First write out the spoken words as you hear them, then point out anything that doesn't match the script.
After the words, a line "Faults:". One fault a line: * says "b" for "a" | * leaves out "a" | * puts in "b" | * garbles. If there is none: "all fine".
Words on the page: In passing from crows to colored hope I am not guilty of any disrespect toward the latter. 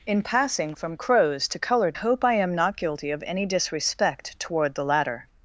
In passing from crows to colored hope I am not guilty of any disrespect toward the latter.
Faults:
all fine